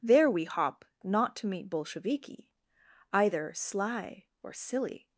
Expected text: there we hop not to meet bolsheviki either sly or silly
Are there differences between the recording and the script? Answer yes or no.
no